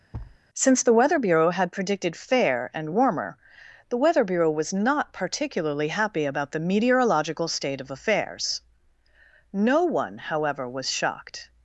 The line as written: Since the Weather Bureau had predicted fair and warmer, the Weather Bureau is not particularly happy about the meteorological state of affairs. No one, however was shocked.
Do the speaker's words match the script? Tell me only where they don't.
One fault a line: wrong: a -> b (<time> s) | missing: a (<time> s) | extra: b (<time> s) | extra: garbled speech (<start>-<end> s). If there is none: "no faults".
wrong: is -> was (4.5 s)